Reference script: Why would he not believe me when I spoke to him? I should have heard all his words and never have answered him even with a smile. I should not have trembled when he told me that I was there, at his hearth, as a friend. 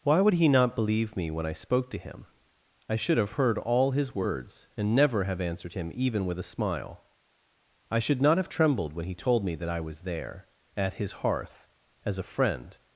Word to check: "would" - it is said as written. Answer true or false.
true